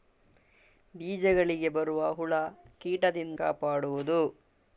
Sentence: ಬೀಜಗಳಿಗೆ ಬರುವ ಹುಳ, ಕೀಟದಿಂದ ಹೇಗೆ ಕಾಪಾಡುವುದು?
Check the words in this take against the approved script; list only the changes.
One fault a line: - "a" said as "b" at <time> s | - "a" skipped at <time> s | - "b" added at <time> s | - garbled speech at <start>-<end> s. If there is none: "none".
- "ಹೇಗೆ" skipped at 3.4 s